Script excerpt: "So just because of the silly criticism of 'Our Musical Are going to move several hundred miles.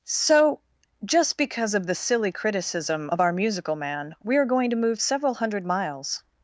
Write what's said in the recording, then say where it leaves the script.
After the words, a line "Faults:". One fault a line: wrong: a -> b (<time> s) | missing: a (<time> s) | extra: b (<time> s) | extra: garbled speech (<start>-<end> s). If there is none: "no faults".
"So just because of the silly criticism of 'Our Musical Man' we are going to move several hundred miles.
Faults:
extra: Man we (3.8 s)